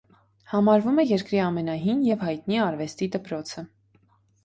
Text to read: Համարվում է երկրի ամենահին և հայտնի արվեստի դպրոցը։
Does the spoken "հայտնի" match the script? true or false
true